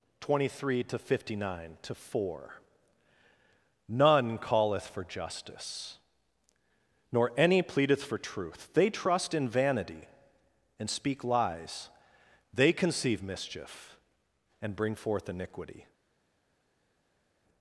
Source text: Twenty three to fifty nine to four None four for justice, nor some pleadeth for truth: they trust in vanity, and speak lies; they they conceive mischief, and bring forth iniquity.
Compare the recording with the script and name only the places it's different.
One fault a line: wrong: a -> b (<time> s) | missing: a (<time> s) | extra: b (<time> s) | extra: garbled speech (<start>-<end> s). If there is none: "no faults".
wrong: four -> calleth (4.4 s)
wrong: some -> any (7.3 s)
missing: they (12.7 s)